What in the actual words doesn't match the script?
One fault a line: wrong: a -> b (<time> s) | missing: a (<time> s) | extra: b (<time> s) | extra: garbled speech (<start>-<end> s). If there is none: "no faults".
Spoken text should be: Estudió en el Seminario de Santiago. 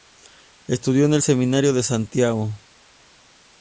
no faults